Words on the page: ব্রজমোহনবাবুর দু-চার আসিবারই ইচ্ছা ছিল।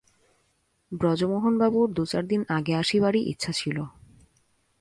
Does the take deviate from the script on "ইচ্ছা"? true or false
false